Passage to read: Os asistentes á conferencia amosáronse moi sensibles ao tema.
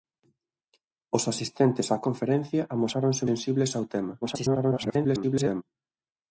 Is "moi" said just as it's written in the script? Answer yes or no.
no